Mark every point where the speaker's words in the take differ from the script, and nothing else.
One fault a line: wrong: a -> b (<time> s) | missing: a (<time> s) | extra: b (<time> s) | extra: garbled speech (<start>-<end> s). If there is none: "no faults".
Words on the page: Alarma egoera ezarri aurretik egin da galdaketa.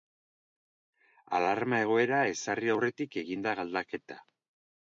no faults